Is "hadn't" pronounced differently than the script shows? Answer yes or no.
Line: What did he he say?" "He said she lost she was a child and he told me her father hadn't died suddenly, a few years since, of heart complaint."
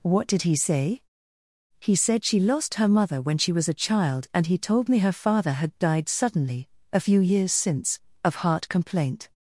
yes